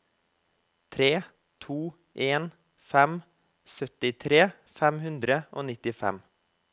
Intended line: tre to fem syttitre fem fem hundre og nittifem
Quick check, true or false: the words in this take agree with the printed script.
false